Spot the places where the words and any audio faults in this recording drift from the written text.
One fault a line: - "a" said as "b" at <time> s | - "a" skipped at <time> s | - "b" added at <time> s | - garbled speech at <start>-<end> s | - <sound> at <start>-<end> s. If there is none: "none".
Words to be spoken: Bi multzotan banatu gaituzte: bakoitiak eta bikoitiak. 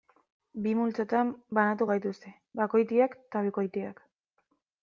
none